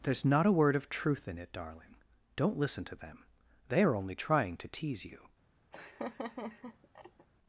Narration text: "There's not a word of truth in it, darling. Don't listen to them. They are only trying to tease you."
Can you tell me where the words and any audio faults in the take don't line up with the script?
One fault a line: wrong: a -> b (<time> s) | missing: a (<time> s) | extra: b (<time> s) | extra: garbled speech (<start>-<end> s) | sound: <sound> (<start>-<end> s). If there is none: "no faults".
sound: laugh (5.7-7.3 s)